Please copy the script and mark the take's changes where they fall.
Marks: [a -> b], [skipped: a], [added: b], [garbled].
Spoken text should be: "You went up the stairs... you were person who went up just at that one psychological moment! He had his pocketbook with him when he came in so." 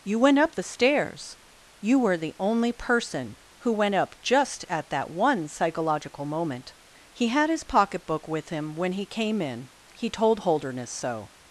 "You went up the stairs... you were [added: the only] person who went up just at that one psychological moment! He had his pocketbook with him when he came in [added: he told Holderness] so."